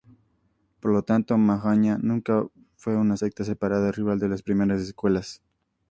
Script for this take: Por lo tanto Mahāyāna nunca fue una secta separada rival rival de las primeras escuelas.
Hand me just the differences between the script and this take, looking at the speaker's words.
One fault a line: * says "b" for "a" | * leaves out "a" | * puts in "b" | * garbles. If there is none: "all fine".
* leaves out "rival"